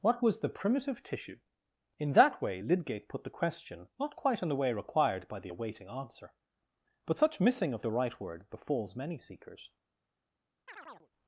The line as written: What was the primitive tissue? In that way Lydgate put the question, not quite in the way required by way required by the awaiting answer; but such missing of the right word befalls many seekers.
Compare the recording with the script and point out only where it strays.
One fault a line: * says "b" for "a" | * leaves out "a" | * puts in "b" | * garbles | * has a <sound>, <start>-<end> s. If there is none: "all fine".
* leaves out "way required by"
* has a chirp, 10.7-11.1 s